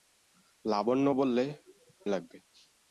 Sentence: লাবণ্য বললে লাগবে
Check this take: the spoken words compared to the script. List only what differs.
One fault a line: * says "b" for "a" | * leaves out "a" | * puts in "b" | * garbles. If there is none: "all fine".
all fine